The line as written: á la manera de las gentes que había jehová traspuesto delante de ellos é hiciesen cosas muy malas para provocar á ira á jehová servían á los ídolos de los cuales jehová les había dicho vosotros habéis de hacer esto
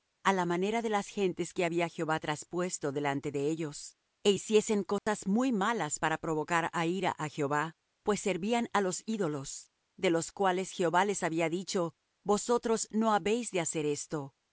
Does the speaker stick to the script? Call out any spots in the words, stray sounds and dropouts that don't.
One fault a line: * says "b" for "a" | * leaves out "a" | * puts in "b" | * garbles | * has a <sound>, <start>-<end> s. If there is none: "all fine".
* has a dropout, 5.0-5.1 s
* puts in "pues"
* puts in "no"